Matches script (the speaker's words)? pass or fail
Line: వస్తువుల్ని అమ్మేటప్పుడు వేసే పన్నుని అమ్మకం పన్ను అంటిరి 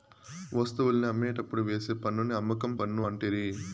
pass